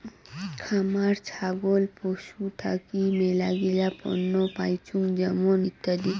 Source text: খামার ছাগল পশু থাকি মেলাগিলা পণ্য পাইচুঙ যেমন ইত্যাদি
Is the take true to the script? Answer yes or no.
yes